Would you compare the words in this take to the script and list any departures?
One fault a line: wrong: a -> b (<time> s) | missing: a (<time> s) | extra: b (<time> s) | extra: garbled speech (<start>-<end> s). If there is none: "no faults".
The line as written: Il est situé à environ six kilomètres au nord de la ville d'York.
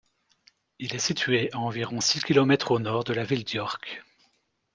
no faults